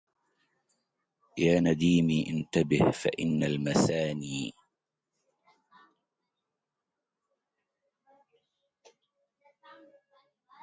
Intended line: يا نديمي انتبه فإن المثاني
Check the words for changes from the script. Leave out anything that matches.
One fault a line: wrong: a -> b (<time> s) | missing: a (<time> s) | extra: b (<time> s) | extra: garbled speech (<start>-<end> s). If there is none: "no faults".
no faults